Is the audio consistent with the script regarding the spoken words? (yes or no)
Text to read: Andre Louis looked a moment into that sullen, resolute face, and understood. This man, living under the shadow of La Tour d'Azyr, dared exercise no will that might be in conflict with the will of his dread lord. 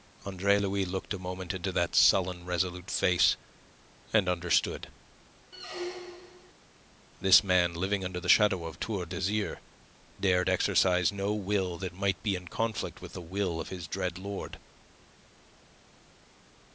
no